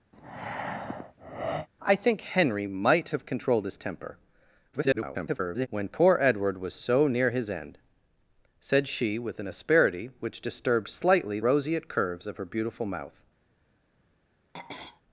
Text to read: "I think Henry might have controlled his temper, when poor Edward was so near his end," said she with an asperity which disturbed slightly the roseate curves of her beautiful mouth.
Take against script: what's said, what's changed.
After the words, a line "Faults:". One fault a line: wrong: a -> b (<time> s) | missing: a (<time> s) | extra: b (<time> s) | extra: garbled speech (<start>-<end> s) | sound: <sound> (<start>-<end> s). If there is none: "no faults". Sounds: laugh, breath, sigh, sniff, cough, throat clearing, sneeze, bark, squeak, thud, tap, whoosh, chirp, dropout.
"I think Henry might have controlled his temper, [garbled] when poor Edward was so near his end," said she with an asperity which disturbed slightly roseate curves of her beautiful mouth.
Faults:
sound: breath (0.1-1.7 s)
extra: garbled speech (4.7-5.7 s)
missing: the (11.4 s)
sound: throat clearing (14.5-15.0 s)